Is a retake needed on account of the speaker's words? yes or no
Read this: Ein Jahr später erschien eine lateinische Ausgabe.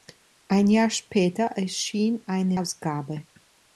yes